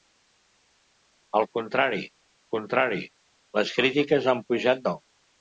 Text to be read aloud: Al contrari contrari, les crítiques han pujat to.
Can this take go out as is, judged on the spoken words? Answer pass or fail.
pass